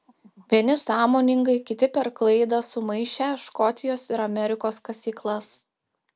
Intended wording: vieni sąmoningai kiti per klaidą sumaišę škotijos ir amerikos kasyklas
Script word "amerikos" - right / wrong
right